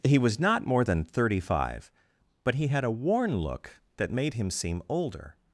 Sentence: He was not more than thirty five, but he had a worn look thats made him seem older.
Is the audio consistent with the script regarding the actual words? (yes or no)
no